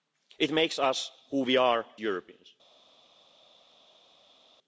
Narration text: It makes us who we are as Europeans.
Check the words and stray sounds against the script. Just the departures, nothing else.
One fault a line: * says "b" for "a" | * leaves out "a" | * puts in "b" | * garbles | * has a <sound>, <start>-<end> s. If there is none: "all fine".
* leaves out "as"